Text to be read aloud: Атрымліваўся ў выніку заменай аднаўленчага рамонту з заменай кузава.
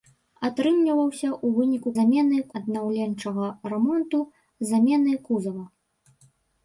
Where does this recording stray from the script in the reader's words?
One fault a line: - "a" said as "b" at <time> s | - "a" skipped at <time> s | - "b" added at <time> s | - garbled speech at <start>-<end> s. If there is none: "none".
none